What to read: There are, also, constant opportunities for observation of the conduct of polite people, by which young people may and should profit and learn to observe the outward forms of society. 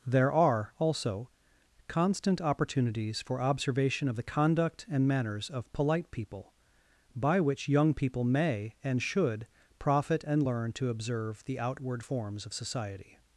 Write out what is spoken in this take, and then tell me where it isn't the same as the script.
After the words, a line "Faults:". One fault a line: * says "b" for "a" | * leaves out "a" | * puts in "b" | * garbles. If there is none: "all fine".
There are, also, constant opportunities for observation of the conduct and manners of polite people, by which young people may and should profit and learn to observe the outward forms of society.
Faults:
* puts in "and manners"